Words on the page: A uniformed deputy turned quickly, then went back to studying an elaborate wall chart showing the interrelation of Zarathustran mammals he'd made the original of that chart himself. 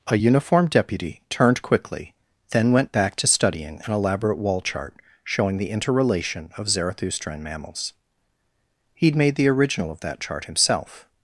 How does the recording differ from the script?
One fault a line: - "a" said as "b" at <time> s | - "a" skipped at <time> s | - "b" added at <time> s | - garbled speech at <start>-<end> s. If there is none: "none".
none